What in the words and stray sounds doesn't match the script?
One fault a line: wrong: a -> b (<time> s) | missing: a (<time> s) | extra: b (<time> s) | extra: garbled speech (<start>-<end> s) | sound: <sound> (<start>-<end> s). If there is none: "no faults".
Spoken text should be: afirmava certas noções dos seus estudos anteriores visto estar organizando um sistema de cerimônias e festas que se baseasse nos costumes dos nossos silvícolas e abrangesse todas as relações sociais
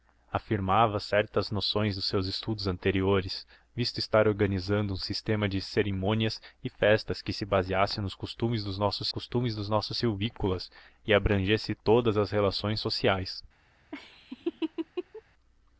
extra: costumes dos nossos (9.1 s)
sound: laugh (13.9-15.2 s)